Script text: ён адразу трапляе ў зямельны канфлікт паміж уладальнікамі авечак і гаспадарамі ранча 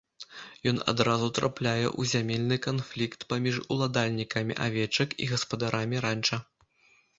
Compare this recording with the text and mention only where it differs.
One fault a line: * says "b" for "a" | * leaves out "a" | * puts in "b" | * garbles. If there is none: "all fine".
all fine